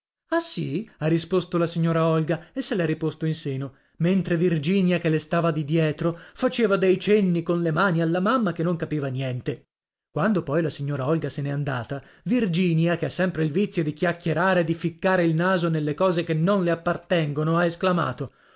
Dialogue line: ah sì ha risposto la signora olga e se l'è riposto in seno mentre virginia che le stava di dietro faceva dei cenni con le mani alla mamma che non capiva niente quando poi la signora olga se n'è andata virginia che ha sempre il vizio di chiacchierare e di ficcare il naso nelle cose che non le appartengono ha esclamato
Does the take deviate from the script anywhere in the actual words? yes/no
no